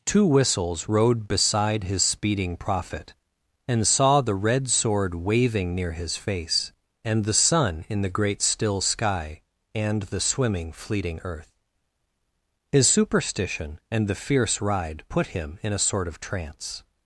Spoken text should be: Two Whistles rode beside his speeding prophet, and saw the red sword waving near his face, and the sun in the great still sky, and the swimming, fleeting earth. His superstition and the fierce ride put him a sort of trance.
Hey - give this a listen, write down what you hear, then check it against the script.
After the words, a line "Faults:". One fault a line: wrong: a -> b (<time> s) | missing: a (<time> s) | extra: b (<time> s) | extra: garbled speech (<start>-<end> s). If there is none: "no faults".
Two Whistles rode beside his speeding prophet, and saw the red sword waving near his face, and the sun in the great still sky, and the swimming, fleeting earth. His superstition and the fierce ride put him in a sort of trance.
Faults:
extra: in (15.6 s)